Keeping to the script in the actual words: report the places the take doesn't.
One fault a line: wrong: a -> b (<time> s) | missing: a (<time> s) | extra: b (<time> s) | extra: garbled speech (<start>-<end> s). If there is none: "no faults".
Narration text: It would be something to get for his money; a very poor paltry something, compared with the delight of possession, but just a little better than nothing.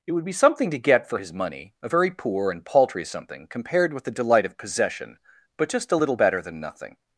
extra: and (2.5 s)